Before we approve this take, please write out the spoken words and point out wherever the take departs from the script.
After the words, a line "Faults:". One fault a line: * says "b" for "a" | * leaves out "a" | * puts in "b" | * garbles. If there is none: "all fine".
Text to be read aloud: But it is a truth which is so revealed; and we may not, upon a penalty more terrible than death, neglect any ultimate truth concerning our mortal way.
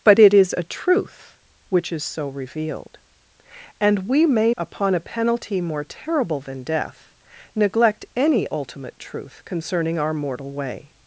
But it is a truth which is so revealed; and we may upon a penalty more terrible than death, neglect any ultimate truth concerning our mortal way.
Faults:
* leaves out "not"